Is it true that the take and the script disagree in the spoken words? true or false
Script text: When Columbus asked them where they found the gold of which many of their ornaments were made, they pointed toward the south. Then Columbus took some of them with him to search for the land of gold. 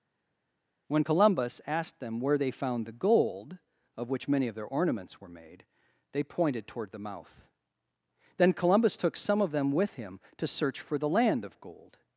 true